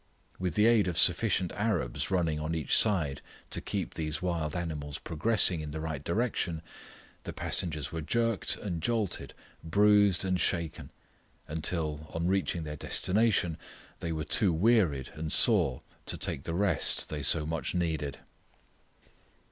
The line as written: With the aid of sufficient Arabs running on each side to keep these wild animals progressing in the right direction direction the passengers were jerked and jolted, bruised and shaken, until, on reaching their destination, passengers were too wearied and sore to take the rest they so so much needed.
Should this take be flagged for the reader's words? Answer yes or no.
yes